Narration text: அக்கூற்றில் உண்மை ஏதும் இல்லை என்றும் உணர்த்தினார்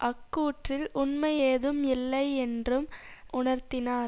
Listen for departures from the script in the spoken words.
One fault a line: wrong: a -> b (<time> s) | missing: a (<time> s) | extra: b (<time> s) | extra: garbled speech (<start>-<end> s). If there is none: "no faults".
no faults